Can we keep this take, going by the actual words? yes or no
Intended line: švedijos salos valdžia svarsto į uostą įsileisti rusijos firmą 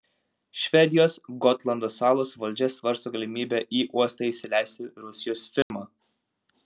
no